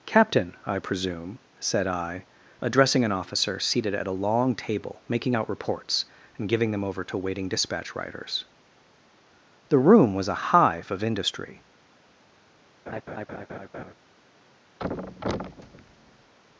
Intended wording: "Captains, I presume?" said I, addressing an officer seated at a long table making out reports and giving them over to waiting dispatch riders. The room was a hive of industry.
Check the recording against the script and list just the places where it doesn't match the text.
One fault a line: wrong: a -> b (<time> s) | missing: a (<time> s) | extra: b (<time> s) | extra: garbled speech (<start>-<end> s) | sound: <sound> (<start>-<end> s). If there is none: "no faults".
wrong: Captains -> Captain (0.1 s)
sound: laugh (12.9-13.9 s)
sound: thud (14.8-16.3 s)